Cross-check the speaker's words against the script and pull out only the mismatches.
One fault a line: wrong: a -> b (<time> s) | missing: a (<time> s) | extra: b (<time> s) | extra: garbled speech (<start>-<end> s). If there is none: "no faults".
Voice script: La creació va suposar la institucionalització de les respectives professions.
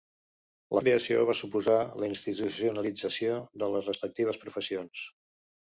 no faults